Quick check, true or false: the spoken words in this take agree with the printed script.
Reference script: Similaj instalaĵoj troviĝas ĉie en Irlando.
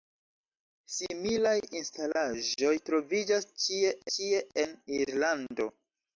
false